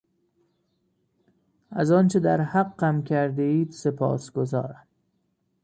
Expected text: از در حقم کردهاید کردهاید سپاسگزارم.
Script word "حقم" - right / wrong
right